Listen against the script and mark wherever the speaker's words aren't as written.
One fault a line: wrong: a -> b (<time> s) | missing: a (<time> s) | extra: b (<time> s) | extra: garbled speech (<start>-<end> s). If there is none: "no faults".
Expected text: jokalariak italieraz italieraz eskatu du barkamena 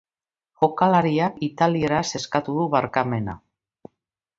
missing: italieraz (2.1 s)